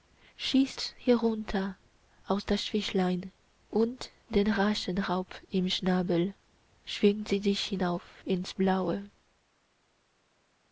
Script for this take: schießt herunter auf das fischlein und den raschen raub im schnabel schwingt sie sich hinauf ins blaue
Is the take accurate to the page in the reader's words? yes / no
yes